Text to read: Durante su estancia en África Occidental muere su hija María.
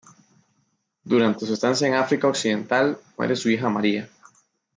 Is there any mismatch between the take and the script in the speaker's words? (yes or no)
no